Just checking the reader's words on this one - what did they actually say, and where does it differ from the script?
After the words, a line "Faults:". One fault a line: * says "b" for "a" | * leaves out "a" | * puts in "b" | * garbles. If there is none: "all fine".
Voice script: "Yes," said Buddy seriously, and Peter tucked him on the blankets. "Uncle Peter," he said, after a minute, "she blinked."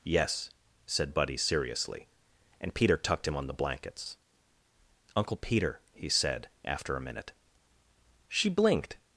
"Yes," said Buddy seriously, and Peter tucked him on the blankets. "Uncle Peter," he said, after a minute, "she blinked."
Faults:
all fine